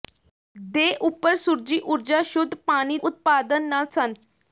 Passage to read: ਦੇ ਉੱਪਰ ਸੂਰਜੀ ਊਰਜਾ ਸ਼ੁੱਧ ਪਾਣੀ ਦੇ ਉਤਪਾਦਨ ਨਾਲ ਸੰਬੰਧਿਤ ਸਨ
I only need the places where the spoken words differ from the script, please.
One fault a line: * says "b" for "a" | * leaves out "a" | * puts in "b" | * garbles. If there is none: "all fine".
* leaves out "ਦੇ"
* leaves out "ਸੰਬੰਧਿਤ"